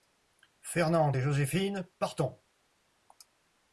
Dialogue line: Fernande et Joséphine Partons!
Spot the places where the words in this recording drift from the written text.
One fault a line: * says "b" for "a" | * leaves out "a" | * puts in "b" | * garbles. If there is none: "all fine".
all fine